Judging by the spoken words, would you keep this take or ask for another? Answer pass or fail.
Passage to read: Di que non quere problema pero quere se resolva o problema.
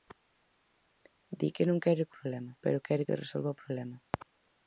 pass